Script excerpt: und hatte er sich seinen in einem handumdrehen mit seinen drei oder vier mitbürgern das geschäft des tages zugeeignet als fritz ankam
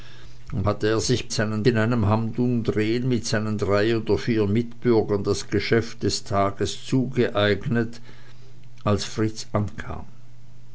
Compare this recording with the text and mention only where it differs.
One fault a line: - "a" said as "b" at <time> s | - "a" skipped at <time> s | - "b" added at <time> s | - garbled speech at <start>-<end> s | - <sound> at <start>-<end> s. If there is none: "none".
none